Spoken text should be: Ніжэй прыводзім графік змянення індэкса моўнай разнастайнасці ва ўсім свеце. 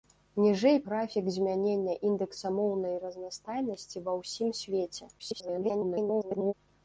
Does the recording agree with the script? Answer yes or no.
no